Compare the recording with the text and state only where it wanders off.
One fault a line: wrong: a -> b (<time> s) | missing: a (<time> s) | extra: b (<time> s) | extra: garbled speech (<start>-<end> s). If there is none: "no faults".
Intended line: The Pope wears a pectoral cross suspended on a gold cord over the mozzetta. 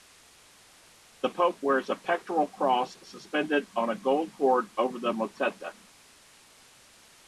no faults